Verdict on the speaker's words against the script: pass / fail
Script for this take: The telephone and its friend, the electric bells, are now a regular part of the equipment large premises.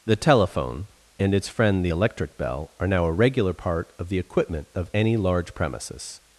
fail